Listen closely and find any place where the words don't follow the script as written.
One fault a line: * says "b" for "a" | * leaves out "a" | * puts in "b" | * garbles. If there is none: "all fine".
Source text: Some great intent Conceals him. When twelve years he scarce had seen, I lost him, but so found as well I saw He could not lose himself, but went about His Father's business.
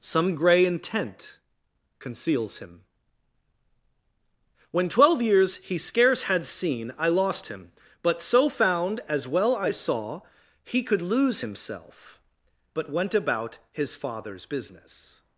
* says "grey" for "great"
* leaves out "not"